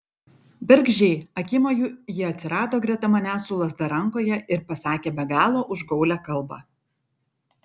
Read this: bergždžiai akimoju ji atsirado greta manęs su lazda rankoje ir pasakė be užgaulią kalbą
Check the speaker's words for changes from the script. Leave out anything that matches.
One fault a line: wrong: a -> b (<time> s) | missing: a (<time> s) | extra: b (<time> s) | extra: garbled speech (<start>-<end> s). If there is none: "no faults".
extra: galo (5.3 s)